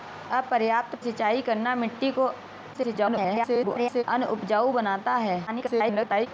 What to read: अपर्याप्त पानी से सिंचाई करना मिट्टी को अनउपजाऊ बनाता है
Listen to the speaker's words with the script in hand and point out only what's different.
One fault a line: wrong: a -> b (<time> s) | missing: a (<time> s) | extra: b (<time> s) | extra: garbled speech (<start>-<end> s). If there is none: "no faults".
missing: पानी से (0.9 s)
extra: garbled speech (2.7-4.0 s)
extra: garbled speech (5.5-6.3 s)